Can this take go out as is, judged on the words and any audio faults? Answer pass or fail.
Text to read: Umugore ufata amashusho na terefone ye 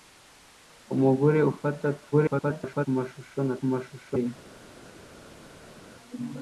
fail